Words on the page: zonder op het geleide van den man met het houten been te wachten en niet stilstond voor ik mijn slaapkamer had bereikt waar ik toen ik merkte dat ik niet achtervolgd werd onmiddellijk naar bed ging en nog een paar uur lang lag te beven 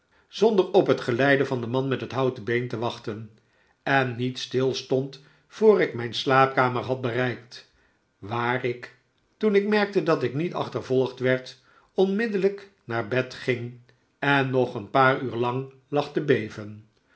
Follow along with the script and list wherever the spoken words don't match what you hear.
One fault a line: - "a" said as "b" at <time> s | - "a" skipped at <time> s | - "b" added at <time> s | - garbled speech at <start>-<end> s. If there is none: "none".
none